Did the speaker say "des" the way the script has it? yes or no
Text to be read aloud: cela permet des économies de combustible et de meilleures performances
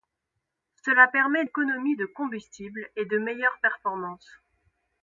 no